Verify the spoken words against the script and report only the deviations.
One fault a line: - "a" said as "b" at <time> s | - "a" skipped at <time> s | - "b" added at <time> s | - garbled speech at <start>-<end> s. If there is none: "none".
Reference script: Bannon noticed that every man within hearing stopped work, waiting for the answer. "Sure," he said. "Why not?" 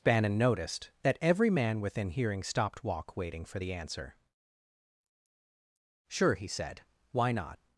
- "work" said as "walk" at 2.8 s